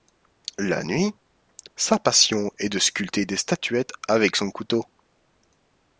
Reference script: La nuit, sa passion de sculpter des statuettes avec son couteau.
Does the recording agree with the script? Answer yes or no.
no